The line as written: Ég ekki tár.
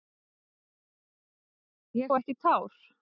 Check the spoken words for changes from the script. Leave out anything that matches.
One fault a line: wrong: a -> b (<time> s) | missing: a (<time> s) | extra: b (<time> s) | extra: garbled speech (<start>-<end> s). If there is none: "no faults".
no faults